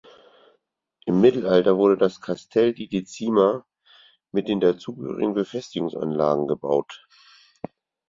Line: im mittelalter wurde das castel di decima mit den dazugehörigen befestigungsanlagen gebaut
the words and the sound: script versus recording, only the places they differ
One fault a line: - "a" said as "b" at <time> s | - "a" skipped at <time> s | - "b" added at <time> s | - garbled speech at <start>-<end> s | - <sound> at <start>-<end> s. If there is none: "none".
none